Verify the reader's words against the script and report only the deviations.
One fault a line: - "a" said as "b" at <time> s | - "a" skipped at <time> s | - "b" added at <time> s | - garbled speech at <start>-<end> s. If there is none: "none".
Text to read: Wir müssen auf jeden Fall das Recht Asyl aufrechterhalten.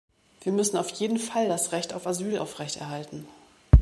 - "auf" added at 1.9 s